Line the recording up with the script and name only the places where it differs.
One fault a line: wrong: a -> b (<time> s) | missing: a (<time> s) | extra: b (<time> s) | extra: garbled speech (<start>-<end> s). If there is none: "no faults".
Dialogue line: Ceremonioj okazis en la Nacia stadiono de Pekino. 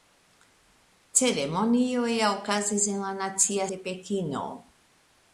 missing: stadiono (3.7 s)